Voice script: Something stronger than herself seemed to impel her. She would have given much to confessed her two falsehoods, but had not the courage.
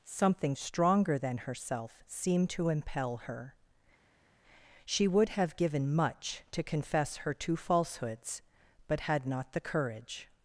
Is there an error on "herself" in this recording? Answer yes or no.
no